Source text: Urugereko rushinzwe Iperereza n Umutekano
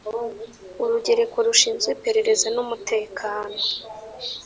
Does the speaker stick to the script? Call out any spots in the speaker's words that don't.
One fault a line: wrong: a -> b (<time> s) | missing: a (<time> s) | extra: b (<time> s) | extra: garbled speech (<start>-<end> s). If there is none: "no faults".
no faults